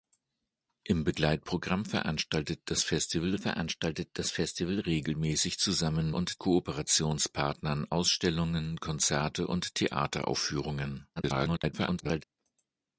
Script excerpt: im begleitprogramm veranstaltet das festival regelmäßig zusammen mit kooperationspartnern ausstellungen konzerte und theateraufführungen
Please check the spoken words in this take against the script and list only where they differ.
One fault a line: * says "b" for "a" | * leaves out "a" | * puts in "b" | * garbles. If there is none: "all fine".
* puts in "veranstaltet das festival"
* says "und" for "mit"
* garbles